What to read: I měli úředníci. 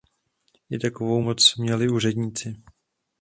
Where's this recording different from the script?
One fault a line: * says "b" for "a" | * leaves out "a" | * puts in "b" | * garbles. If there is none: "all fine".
* puts in "takovou moc"